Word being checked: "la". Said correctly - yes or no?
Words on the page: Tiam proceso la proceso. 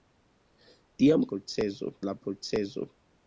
yes